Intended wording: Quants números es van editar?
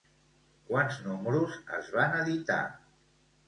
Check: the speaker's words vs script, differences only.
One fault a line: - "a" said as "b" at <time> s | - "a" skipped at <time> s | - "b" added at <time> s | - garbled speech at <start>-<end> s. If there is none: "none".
none